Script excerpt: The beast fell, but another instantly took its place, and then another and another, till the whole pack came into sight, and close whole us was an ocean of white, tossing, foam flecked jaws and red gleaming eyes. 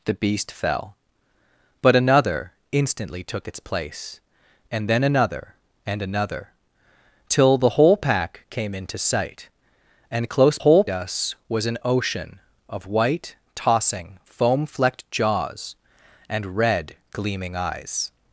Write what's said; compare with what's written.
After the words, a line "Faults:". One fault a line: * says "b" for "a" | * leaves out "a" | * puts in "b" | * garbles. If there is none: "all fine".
The beast fell, but another instantly took its place, and then another and another, till the whole pack came into sight, and close whole us was an ocean of white, tossing, foam flecked jaws and red gleaming eyes.
Faults:
all fine